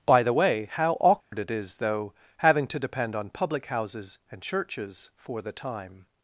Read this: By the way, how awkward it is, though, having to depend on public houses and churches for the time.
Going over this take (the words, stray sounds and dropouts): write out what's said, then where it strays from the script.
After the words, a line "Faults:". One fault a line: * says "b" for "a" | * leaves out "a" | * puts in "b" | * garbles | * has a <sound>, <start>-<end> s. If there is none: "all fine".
By the way, how awkward it is, though, having to depend on public houses and churches for the time.
Faults:
* has a dropout, 1.2-1.3 s